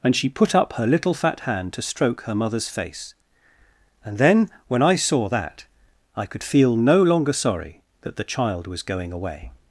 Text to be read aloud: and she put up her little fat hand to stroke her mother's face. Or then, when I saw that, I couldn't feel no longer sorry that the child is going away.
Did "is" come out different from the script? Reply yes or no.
yes